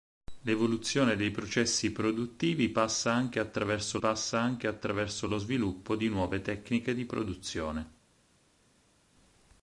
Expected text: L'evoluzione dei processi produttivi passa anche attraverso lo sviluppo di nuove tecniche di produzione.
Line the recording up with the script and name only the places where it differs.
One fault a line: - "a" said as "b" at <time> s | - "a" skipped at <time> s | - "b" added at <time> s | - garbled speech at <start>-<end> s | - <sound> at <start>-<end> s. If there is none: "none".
- "passa anche attraverso" added at 4.0 s